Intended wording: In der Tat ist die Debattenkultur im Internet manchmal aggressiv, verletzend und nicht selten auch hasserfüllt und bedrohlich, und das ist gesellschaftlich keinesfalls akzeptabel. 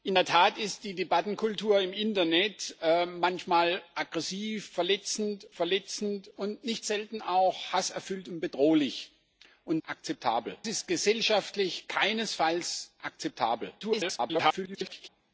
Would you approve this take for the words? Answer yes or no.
no